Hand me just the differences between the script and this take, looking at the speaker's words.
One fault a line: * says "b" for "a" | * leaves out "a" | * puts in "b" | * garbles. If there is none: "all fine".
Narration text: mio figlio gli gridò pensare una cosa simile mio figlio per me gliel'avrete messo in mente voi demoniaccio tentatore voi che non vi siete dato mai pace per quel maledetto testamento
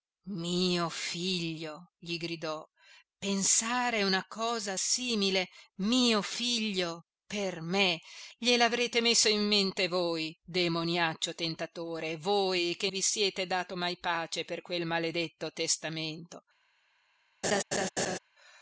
* leaves out "non"